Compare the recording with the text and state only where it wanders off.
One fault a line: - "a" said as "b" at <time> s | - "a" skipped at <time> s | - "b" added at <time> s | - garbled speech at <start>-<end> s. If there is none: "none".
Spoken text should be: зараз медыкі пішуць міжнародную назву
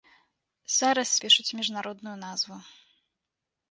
- "медыкі" skipped at 1.1 s